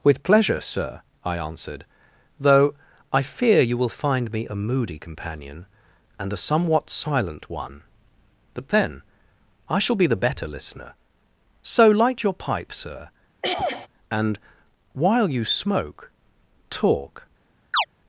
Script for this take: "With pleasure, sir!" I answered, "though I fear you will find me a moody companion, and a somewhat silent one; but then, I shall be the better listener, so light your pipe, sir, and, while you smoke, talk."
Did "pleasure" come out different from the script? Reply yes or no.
no